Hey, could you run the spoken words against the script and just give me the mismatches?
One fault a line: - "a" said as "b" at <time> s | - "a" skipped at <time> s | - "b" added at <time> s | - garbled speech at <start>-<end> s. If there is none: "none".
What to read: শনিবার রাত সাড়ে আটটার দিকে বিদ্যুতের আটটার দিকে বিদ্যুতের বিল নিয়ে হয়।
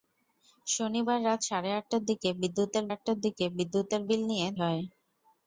none